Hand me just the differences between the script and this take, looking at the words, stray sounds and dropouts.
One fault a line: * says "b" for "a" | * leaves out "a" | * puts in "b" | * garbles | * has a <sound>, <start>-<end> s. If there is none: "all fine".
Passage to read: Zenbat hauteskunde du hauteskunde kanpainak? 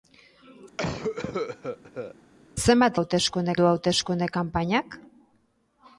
* has a cough, 0.8-2.1 s